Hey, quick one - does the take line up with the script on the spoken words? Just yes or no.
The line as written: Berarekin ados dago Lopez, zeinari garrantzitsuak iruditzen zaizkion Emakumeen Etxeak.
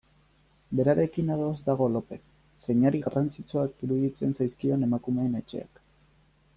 yes